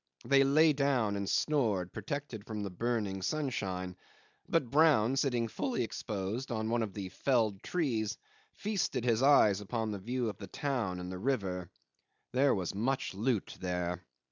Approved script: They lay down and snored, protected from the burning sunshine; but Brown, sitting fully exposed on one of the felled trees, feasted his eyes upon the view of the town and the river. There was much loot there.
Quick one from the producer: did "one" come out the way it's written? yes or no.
yes